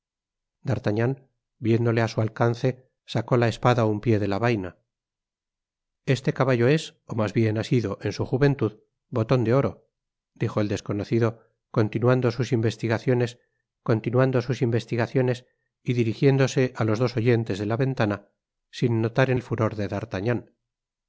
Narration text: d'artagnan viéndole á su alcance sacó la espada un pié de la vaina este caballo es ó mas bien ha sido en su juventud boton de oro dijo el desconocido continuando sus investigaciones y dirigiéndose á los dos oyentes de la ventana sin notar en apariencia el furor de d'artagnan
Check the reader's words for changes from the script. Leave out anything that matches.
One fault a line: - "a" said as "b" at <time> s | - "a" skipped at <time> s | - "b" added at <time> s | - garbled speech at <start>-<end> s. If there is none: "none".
- "continuando sus investigaciones" added at 13.8 s
- "apariencia" skipped at 19.4 s